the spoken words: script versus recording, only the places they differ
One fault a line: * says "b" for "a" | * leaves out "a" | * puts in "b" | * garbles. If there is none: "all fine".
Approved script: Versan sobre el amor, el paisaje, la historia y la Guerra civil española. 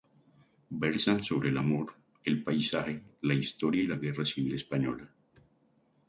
all fine